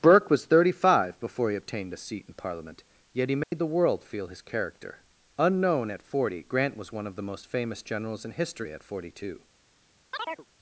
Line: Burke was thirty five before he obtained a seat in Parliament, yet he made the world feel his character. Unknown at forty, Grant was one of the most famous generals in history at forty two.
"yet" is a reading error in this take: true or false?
false